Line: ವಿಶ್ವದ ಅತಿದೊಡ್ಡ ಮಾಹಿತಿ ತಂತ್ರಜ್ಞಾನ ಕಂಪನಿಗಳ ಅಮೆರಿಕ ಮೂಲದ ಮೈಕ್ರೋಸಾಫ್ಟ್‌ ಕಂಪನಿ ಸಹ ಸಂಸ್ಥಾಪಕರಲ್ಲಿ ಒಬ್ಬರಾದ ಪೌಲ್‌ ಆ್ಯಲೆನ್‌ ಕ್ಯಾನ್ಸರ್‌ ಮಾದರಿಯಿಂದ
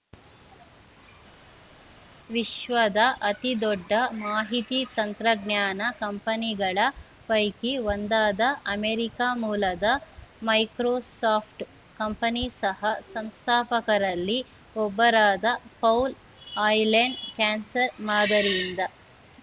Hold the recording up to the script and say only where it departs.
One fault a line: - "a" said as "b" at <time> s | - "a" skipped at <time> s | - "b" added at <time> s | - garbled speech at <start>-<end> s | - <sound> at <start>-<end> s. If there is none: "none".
- "ಪೈಕಿ ಒಂದಾದ" added at 7.3 s